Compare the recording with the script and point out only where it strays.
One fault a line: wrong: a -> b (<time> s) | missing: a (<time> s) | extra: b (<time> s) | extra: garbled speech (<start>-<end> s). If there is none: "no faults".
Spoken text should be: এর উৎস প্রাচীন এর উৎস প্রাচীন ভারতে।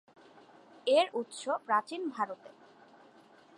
missing: এর উৎস প্রাচীন (2.0 s)